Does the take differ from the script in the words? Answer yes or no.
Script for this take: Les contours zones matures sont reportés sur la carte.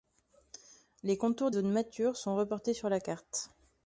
no